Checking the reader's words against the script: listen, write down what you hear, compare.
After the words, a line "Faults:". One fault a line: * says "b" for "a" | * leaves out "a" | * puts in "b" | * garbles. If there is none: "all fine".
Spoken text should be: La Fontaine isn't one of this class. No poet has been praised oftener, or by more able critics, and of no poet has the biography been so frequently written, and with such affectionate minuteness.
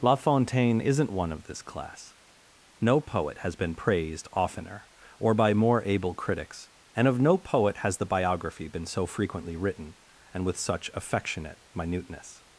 La Fontaine isn't one of this class. No poet has been praised oftener, or by more able critics, and of no poet has the biography been so frequently written, and with such affectionate minuteness.
Faults:
all fine